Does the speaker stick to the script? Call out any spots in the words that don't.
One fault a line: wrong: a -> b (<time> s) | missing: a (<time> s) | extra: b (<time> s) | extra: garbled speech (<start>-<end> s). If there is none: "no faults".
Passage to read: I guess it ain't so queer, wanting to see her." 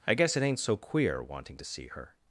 no faults